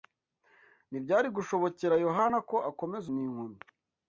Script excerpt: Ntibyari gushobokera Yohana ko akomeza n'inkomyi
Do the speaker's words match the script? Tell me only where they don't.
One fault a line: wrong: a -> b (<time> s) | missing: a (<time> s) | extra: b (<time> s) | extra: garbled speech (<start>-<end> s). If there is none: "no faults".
no faults